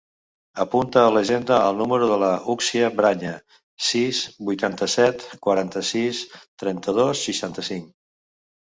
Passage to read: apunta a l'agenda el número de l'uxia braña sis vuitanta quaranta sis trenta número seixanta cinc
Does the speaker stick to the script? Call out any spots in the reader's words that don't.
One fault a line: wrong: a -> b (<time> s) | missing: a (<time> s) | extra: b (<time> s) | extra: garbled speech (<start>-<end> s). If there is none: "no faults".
extra: set (5.0 s)
wrong: número -> dos (7.0 s)